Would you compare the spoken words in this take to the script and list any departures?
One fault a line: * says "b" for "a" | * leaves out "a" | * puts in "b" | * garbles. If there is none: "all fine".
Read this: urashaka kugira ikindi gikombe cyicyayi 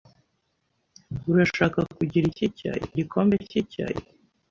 * says "cyicyayi" for "ikindi"